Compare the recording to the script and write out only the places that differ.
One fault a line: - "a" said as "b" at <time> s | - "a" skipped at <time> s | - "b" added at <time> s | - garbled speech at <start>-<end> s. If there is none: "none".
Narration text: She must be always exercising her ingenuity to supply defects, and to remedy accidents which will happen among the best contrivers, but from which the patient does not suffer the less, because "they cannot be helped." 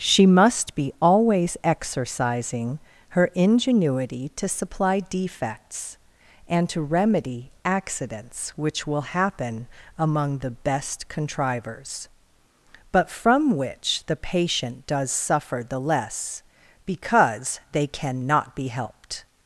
- "not" skipped at 15.1 s